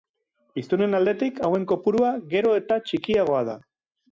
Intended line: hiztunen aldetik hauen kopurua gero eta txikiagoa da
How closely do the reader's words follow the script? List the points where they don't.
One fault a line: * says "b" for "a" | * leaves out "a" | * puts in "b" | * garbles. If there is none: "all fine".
all fine